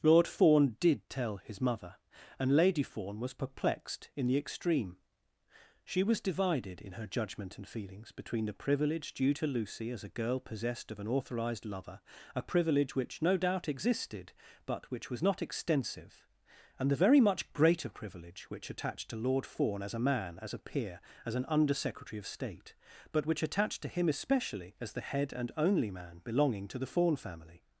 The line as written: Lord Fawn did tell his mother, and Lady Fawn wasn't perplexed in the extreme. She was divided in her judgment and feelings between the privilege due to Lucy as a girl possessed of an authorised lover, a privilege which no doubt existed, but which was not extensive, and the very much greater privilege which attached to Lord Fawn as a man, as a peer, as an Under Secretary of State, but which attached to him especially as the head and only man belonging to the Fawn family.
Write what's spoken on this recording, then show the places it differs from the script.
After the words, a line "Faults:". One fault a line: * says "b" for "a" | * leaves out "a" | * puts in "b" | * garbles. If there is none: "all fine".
Lord Fawn did tell his mother, and Lady Fawn was perplexed in the extreme. She was divided in her judgment and feelings between the privilege due to Lucy as a girl possessed of an authorised lover, a privilege which no doubt existed, but which was not extensive, and the very much greater privilege which attached to Lord Fawn as a man, as a peer, as an Under Secretary of State, but which attached to him especially as the head and only man belonging to the Fawn family.
Faults:
* says "was" for "wasn't"